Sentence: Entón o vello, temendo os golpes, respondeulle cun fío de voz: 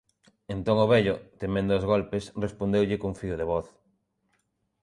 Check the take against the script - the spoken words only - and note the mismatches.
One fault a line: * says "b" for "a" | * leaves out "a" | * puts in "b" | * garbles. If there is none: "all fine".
all fine